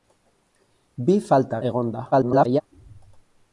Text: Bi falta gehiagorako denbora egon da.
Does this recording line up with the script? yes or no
no